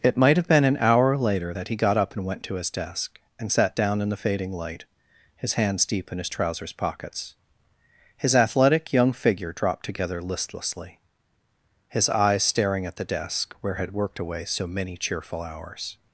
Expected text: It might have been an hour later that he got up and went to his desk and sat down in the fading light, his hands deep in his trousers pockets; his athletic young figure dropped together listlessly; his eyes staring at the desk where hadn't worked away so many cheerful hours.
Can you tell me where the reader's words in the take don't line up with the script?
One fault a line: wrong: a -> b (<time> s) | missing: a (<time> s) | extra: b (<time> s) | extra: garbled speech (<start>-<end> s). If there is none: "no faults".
wrong: hadn't -> had (13.7 s)